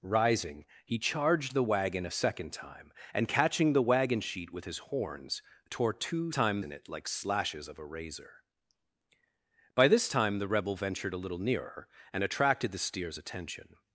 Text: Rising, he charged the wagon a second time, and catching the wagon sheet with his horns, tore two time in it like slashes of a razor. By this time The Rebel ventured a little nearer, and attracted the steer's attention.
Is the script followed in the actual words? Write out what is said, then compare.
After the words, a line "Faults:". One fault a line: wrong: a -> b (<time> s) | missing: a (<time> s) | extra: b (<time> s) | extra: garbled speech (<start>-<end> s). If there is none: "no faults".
Rising, he charged the wagon a second time, and catching the wagon sheet with his horns, tore two time in it like slashes of a razor. By this time The Rebel ventured a little nearer, and attracted the steer's attention.
Faults:
no faults